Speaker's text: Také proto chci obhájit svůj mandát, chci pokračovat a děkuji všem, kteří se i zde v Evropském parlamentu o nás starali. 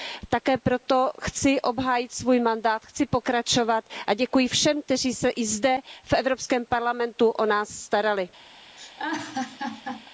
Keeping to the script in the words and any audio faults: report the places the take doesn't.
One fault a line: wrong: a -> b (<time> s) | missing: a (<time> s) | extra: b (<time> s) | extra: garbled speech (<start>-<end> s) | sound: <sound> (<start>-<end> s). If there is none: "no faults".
sound: laugh (8.8-10.1 s)